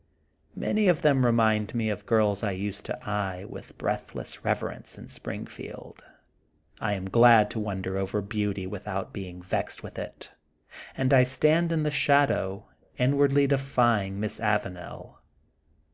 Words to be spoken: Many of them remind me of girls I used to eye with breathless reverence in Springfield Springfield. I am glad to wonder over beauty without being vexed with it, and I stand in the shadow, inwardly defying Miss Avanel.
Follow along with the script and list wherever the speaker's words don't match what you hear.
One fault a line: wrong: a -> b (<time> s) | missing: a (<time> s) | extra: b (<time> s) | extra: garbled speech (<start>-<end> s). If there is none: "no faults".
missing: Springfield (6.0 s)